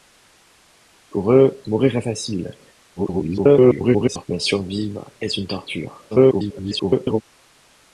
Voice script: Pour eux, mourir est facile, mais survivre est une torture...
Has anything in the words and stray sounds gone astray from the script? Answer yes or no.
yes